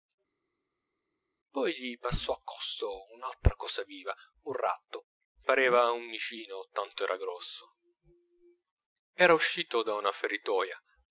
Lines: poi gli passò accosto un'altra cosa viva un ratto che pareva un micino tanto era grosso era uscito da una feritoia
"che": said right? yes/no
no